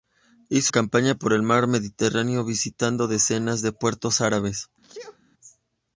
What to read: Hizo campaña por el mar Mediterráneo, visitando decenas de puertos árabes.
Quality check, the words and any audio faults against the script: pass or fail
fail